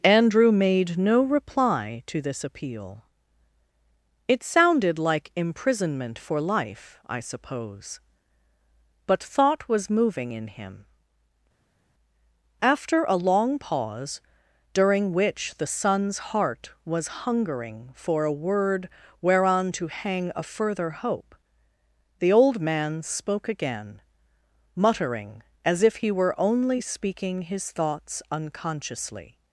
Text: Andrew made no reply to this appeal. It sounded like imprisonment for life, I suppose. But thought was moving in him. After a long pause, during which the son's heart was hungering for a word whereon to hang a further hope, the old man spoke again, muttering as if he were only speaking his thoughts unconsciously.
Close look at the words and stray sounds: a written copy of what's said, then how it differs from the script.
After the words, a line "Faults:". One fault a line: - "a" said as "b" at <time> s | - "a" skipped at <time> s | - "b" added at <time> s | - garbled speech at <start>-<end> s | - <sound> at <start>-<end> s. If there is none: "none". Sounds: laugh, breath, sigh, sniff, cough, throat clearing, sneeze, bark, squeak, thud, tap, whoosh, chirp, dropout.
Andrew made no reply to this appeal. It sounded like imprisonment for life, I suppose. But thought was moving in him. After a long pause, during which the son's heart was hungering for a word whereon to hang a further hope, the old man spoke again, muttering as if he were only speaking his thoughts unconsciously.
Faults:
none